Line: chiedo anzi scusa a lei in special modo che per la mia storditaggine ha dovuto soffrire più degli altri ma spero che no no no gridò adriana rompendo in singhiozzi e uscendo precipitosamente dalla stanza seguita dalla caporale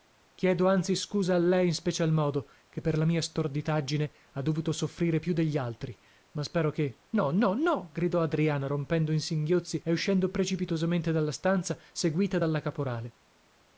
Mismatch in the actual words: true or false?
false